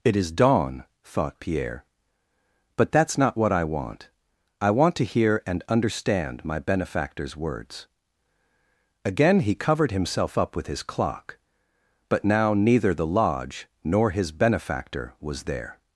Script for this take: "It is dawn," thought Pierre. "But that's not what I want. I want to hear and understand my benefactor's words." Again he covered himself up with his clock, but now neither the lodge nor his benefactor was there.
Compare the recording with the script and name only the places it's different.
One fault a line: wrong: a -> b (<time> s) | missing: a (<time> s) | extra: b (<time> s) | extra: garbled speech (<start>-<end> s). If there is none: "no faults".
no faults